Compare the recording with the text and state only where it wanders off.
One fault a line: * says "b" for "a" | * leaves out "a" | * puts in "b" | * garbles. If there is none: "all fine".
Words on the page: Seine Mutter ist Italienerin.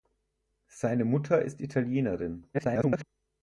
* garbles